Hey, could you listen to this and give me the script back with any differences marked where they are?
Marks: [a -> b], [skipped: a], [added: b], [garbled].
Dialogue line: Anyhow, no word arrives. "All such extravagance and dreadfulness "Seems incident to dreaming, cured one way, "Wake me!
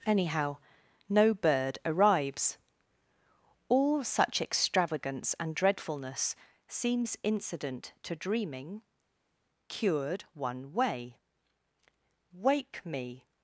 Anyhow, no [word -> bird] arrives. "All such extravagance and dreadfulness "Seems incident to dreaming, cured one way, "Wake me!